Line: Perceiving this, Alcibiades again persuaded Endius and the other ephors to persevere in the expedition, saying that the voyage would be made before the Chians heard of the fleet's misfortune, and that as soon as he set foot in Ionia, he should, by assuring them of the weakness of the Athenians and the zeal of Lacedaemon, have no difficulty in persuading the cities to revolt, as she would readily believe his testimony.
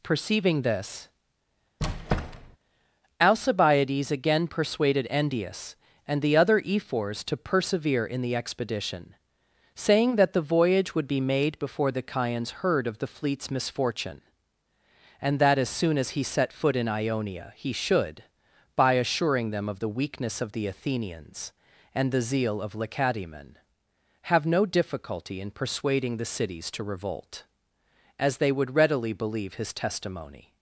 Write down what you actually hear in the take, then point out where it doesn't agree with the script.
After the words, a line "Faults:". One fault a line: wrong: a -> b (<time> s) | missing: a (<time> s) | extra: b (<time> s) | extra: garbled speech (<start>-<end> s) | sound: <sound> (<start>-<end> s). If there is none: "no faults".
Perceiving this, Alcibiades again persuaded Endius and the other ephors to persevere in the expedition, saying that the voyage would be made before the Chians heard of the fleet's misfortune, and that as soon as he set foot in Ionia, he should, by assuring them of the weakness of the Athenians and the zeal of Lacedaemon, have no difficulty in persuading the cities to revolt, as they would readily believe his testimony.
Faults:
sound: squeak (1.8-2.6 s)
wrong: she -> they (28.4 s)